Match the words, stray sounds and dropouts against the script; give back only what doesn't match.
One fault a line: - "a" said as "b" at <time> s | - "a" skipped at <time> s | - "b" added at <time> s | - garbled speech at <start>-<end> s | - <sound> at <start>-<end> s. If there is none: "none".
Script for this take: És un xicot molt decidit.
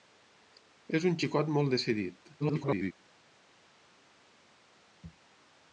- garbled speech at 2.4-2.9 s